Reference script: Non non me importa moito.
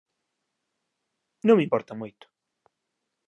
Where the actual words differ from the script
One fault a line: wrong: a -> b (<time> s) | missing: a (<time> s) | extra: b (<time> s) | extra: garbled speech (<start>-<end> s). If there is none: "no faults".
missing: non (1.6 s)